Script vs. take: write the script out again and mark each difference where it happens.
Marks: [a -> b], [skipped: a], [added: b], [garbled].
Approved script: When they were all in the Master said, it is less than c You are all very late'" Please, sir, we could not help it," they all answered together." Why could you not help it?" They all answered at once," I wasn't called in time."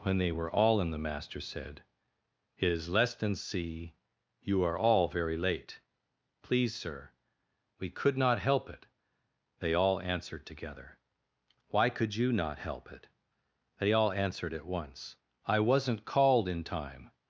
When they were all in the Master said, it is less than c You are all very late'" Please, sir, we could not help it," they all answered together." Why could you not help it?" They all answered at once," I wasn't called in time."